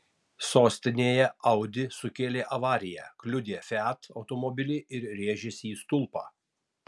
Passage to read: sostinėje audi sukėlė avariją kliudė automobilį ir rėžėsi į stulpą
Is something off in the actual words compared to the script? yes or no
yes